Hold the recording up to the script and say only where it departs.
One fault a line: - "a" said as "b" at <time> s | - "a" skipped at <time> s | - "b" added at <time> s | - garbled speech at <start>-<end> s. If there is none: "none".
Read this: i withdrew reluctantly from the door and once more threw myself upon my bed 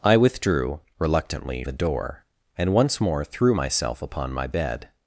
- "from" skipped at 1.6 s